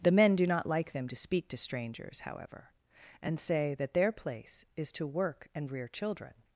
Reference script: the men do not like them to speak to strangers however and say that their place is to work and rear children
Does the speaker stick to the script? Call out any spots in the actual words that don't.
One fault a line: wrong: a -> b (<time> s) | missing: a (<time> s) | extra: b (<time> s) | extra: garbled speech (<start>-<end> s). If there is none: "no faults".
no faults